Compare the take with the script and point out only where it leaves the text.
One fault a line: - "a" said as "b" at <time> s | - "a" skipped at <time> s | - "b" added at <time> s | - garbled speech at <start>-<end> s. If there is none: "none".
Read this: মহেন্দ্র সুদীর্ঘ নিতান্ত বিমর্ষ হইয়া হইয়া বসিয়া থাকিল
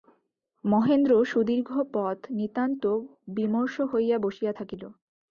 - "পথ" added at 1.9 s
- "হইয়া" skipped at 4.2 s